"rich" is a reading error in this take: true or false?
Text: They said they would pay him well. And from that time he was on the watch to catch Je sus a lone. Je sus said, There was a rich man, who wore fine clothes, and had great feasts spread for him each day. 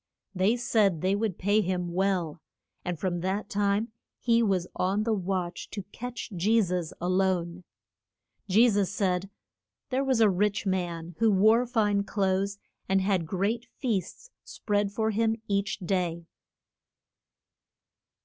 false